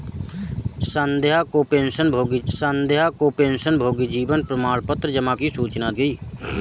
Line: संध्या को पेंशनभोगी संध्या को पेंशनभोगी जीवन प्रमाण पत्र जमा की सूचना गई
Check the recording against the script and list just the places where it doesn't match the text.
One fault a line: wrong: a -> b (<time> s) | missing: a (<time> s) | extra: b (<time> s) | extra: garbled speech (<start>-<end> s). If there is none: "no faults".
no faults